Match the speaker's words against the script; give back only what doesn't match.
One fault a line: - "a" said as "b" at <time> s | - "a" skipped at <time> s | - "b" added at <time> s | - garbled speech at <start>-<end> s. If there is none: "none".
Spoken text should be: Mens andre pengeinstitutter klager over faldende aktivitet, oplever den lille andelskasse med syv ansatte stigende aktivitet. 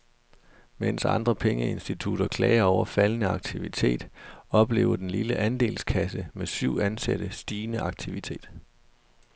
none